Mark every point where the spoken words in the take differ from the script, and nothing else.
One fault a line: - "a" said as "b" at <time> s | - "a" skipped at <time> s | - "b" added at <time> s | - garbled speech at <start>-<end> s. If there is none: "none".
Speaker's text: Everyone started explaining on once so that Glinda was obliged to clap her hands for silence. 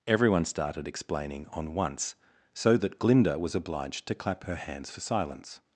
none